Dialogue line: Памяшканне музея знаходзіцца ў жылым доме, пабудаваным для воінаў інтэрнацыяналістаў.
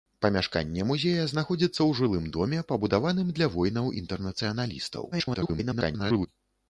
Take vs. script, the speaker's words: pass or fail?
fail